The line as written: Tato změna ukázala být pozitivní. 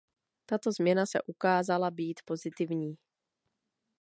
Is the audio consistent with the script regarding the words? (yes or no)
no